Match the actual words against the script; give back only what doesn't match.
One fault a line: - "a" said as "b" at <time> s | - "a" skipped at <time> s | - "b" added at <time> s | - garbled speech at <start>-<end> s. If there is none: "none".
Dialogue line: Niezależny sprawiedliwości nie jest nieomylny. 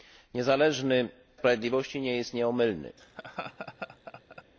none